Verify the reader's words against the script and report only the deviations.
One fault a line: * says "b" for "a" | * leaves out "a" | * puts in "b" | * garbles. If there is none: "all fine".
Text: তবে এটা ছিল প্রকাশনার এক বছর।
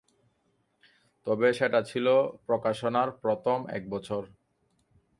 * says "সেটা" for "এটা"
* puts in "প্রথম"